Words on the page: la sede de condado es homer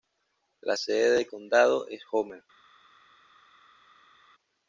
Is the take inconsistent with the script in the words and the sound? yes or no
no